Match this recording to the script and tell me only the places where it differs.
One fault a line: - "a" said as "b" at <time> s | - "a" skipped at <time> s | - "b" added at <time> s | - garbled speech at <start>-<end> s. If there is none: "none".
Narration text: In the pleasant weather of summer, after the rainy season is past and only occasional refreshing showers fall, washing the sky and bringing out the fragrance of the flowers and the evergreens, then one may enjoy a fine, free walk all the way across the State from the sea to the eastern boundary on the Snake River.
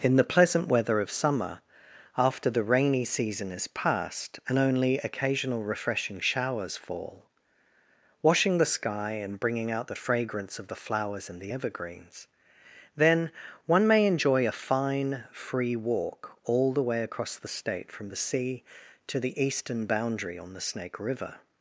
none